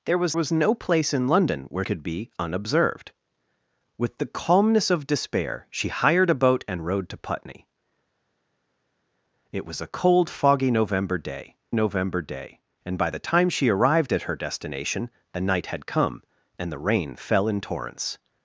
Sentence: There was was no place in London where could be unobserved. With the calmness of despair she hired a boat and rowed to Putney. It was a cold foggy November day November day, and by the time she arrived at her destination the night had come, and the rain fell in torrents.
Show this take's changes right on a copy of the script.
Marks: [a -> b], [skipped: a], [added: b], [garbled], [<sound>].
There was was no place in London where could be unobserved. With the calmness of despair she hired a boat and rowed to Putney. It was a cold foggy November day November day, and by the time she arrived at her destination the night had come, and the rain fell in torrents.